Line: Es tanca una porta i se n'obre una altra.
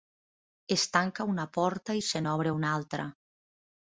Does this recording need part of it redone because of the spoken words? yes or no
no